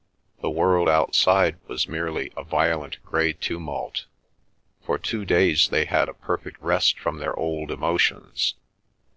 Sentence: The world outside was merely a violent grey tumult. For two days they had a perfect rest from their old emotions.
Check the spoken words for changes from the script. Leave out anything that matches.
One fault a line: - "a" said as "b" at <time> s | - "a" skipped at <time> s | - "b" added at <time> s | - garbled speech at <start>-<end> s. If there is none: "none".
none